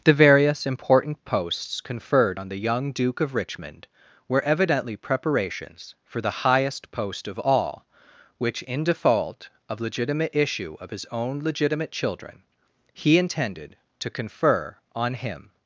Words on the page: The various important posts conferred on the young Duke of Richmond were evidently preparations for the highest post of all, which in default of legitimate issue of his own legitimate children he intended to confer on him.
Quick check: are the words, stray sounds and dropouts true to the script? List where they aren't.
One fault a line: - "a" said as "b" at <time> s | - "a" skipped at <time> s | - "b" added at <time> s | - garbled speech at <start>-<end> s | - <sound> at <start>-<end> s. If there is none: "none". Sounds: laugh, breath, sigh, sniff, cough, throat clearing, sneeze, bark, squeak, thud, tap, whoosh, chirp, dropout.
none